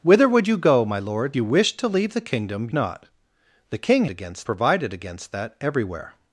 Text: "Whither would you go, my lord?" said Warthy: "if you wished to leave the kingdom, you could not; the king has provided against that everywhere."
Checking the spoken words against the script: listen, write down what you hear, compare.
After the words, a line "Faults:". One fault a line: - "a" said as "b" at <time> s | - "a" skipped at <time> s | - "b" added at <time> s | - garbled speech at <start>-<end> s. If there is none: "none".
"Whither would you go, my lord?" you wished to leave the kingdom, not; the king against provided against that everywhere."
Faults:
- "said Warthy if" skipped at 1.4 s
- "you could" skipped at 2.7 s
- "has" said as "against" at 4.1 s